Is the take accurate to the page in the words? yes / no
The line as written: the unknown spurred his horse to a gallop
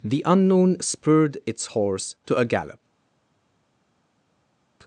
no